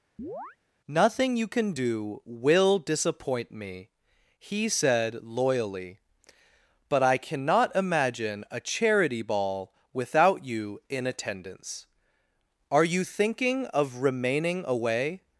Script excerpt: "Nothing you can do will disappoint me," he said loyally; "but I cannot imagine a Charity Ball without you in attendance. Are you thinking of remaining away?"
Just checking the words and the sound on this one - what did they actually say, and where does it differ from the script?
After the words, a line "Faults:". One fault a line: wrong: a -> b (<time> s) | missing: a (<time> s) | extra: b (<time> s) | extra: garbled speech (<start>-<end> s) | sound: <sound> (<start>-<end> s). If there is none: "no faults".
"Nothing you can do will disappoint me," he said loyally; "but I cannot imagine a Charity Ball without you in attendance. Are you thinking of remaining away?"
Faults:
sound: chirp (0.2-0.6 s)